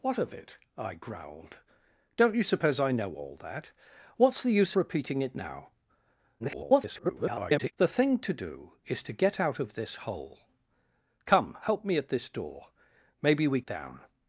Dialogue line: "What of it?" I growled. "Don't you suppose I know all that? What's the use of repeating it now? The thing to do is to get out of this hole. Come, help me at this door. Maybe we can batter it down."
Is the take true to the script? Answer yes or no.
no